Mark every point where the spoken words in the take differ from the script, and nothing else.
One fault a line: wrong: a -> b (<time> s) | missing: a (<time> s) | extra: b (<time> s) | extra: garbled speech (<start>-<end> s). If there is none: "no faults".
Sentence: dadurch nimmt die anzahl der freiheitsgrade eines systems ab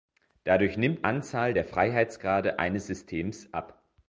missing: die (1.1 s)